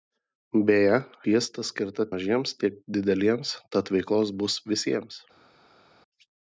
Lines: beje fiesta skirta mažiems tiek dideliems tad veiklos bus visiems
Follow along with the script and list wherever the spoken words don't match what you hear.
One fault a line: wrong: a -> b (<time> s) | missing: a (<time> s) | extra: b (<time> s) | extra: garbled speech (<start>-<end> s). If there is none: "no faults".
no faults